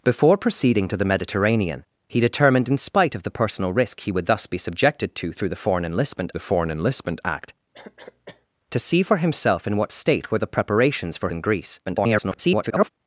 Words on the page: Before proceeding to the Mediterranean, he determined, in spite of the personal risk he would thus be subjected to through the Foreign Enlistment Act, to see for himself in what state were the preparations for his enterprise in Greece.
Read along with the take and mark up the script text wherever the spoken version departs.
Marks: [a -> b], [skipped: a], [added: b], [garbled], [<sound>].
Before proceeding to the Mediterranean, he determined, in spite of the personal risk he would thus be subjected to through the Foreign Enlistment [added: the Foreign Enlistment] Act, [cough] to see for himself in what state were the preparations for [skipped: his enterprise] in Greece. [garbled]